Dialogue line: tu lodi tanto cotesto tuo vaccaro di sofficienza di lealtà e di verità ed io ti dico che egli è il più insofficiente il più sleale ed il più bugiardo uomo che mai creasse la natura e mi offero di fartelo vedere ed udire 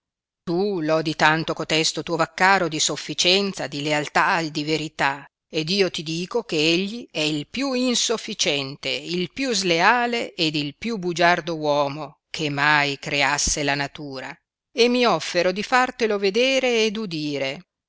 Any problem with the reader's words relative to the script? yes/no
no